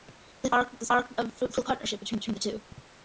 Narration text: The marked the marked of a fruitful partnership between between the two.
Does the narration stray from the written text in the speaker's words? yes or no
no